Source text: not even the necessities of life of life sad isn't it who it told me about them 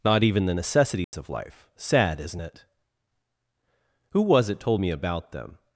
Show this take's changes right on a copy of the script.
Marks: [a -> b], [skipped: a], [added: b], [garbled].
not even the necessities of life [skipped: of life] sad isn't it who [added: was] it told me about them